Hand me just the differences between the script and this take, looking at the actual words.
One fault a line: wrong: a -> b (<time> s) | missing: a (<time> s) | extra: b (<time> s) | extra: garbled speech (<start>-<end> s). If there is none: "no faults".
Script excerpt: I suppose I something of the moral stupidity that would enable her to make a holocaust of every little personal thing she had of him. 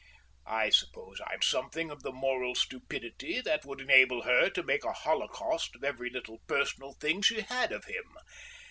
no faults